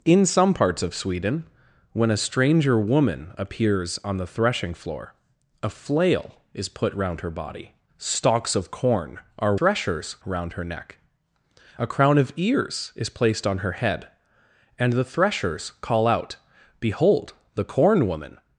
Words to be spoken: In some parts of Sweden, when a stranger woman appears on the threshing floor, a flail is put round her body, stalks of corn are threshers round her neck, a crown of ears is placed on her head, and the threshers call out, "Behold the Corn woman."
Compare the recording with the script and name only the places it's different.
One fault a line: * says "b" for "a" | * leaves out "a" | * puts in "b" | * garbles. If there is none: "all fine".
all fine